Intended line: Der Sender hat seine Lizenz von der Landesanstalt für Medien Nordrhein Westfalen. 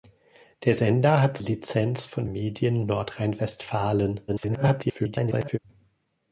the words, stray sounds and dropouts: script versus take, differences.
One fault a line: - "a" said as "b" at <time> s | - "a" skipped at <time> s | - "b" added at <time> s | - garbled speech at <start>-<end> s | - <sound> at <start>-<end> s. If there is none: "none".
- "seine" skipped at 1.4 s
- "der Landesanstalt für" skipped at 2.3 s
- garbled speech at 4.3-5.6 s